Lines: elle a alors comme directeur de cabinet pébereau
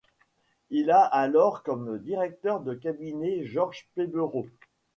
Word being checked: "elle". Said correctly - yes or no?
no